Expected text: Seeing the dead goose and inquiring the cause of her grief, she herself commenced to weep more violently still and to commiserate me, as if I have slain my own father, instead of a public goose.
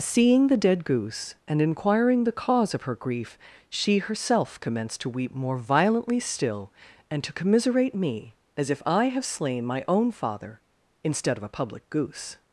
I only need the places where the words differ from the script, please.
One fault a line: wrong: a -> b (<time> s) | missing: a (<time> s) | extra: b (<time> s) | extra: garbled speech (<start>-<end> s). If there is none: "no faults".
no faults